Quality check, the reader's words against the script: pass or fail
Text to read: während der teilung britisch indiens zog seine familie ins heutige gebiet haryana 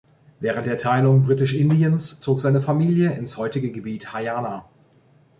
pass